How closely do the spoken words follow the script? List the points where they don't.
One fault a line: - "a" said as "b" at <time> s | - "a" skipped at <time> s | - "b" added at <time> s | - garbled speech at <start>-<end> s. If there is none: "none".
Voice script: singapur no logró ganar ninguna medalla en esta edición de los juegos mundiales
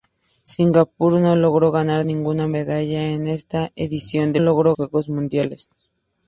- "los" said as "logró" at 4.4 s